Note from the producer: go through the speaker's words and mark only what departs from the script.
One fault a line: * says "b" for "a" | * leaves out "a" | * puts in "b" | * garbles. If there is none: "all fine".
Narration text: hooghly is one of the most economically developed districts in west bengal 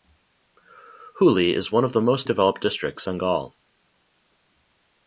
* leaves out "economically"
* leaves out "in west"